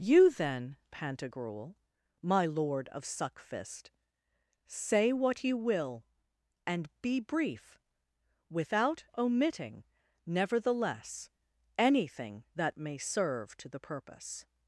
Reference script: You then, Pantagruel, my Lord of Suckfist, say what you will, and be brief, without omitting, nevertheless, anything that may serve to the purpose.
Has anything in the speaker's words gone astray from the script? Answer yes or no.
no